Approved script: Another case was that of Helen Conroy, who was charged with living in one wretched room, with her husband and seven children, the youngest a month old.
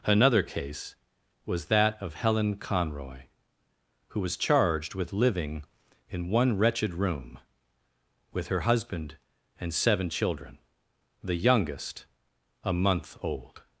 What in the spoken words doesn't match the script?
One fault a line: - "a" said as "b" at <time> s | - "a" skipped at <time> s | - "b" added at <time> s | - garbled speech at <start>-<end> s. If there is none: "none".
none